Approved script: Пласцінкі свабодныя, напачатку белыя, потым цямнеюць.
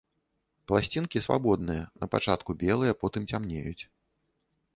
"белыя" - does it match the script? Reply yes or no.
yes